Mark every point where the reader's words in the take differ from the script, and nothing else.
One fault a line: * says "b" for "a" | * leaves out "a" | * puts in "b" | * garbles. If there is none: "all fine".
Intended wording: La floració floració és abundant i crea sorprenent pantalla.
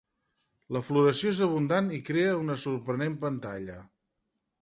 * leaves out "floració"
* puts in "una"